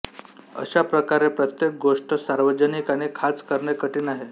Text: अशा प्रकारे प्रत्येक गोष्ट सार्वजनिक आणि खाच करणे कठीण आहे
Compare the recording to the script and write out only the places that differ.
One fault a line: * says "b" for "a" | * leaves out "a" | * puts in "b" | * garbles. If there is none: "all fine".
all fine